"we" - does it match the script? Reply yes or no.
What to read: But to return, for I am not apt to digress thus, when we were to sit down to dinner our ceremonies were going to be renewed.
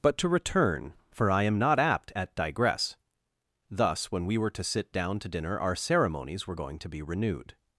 yes